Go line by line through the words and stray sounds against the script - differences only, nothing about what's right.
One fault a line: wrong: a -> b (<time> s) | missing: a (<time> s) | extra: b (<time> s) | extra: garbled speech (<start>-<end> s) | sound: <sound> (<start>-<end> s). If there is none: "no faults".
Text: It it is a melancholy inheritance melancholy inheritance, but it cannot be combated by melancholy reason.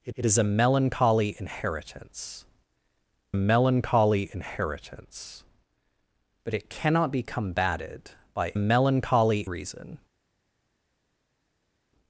no faults